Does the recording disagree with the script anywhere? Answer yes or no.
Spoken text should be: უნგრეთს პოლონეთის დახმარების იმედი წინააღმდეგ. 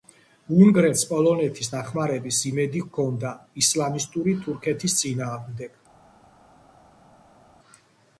yes